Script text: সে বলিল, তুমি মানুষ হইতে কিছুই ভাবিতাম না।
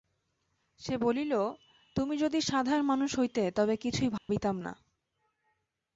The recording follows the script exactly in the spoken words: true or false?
false